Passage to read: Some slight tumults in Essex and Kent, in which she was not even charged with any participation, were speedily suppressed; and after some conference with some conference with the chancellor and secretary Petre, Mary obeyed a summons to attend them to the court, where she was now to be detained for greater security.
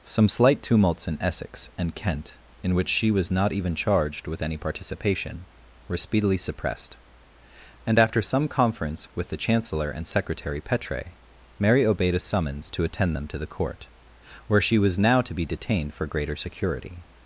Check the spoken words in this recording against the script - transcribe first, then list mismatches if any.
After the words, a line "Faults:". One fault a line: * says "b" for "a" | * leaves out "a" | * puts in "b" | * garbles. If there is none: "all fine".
Some slight tumults in Essex and Kent, in which she was not even charged with any participation, were speedily suppressed; and after some conference with the chancellor and secretary Petre, Mary obeyed a summons to attend them to the court, where she was now to be detained for greater security.
Faults:
* leaves out "some conference with"